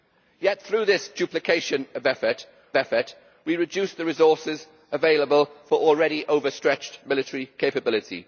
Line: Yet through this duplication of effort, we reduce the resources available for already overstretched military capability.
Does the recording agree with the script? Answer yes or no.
no